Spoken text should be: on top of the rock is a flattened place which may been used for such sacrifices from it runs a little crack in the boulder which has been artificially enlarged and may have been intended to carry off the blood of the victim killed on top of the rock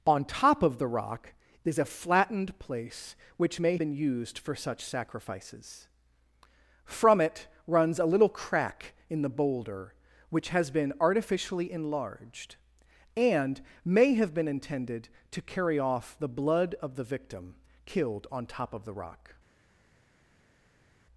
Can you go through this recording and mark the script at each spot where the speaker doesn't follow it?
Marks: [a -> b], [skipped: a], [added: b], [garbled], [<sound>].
on top of the rock is a flattened place which may been used for such sacrifices from it runs a little crack in the boulder which has been artificially enlarged and may have been intended to carry off the blood of the victim killed on top of the rock